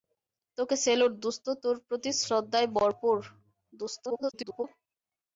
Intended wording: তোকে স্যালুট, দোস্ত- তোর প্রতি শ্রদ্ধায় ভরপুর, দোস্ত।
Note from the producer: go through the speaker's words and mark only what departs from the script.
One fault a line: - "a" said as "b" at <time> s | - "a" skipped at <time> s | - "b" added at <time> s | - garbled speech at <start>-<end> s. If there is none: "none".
- garbled speech at 4.1-4.6 s